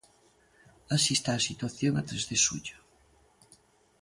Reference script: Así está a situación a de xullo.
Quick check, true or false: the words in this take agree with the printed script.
false